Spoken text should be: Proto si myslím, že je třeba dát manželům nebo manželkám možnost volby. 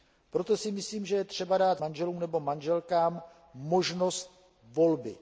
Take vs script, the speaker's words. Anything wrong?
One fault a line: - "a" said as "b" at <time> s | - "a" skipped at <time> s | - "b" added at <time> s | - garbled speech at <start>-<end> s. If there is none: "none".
none